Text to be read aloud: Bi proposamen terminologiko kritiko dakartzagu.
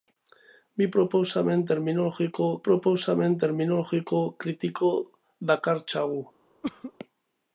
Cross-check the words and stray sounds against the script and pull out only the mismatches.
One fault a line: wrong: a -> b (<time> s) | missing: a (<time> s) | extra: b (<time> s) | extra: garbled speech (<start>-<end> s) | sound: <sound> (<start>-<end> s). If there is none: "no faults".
extra: proposamen terminologiko (2.7 s)
sound: cough (6.6-6.9 s)